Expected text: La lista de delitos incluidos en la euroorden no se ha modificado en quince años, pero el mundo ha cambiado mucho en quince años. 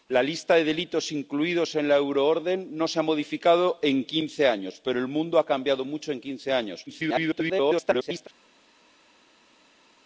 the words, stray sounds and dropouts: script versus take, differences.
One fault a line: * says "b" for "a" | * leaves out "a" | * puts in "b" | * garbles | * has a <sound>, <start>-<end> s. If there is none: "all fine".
* garbles